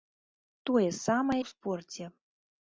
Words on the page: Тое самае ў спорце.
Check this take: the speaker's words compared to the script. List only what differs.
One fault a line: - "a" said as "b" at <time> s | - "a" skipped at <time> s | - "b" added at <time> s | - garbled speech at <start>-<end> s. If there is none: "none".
none